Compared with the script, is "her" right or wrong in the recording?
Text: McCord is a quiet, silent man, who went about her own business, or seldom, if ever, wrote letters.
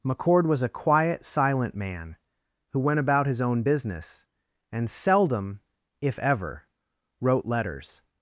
wrong